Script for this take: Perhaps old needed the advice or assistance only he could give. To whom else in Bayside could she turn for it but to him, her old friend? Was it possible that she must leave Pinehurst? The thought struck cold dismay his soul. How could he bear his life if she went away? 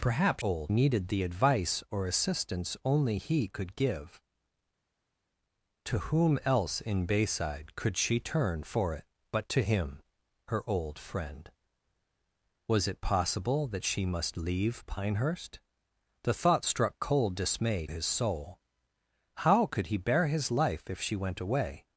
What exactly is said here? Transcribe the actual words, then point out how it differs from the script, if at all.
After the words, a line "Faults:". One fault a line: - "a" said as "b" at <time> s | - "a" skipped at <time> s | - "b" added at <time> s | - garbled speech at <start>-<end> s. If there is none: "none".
Perhaps old needed the advice or assistance only he could give. To whom else in Bayside could she turn for it but to him, her old friend? Was it possible that she must leave Pinehurst? The thought struck cold dismay his soul. How could he bear his life if she went away?
Faults:
none